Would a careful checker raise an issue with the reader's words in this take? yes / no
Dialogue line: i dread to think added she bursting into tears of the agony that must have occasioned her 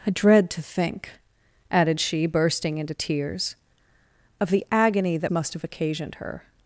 no